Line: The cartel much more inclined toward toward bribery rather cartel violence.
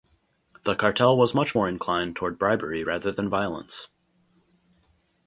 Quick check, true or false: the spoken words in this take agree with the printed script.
false